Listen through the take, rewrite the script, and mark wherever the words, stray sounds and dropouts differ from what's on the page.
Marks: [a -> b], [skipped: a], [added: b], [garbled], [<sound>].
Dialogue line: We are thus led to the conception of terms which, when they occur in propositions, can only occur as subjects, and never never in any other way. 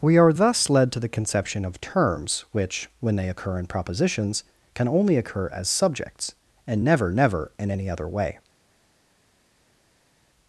We are thus led to the conception of terms which, when they occur in propositions, can only occur as subjects, and never never in any other way.